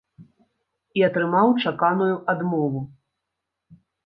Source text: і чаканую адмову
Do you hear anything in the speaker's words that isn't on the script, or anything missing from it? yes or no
yes